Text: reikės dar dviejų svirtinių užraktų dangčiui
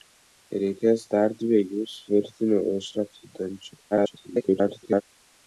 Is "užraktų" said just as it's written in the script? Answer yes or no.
yes